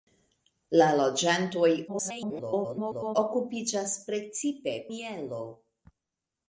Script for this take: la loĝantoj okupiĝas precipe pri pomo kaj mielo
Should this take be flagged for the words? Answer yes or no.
yes